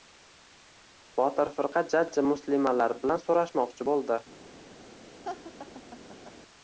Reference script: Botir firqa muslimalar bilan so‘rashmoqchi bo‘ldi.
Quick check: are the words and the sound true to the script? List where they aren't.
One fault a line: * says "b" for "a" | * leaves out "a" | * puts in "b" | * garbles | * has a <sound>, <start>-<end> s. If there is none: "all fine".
* puts in "jajji"
* has a laugh, 5.2-6.4 s